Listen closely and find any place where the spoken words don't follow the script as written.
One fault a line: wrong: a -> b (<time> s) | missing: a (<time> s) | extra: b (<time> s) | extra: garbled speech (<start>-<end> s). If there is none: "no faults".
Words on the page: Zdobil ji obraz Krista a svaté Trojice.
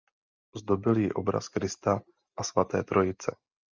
no faults